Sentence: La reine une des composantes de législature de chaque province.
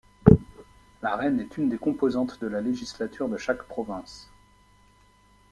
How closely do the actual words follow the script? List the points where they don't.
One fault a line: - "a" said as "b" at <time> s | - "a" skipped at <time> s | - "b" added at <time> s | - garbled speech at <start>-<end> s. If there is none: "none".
- "est" added at 1.4 s
- "la" added at 2.5 s